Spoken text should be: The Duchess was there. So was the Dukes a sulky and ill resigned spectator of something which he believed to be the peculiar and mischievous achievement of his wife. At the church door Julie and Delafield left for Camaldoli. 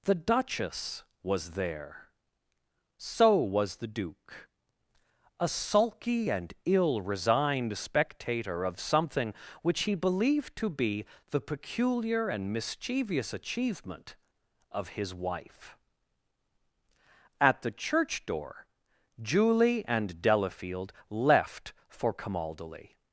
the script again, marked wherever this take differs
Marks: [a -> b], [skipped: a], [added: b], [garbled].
The Duchess was there. So was the [Dukes -> Duke] a sulky and ill resigned spectator of something which he believed to be the peculiar and mischievous achievement of his wife. At the church door Julie and Delafield left for Camaldoli.